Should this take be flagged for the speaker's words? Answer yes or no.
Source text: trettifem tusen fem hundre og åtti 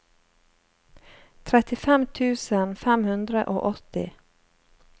no